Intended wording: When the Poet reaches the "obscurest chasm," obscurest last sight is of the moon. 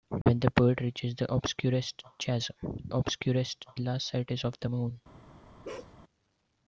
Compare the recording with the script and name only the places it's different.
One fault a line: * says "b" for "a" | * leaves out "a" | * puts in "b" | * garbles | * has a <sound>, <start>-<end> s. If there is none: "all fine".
* has a dropout, 0.2-0.3 s
* has a bark, 5.6-5.9 s